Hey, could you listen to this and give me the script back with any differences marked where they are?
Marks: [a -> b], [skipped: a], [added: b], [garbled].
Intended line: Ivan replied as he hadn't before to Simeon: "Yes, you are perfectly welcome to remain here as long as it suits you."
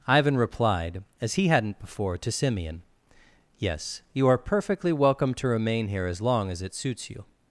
Ivan replied as he hadn't before to Simeon: "Yes, you are perfectly welcome to remain here as long as it suits you."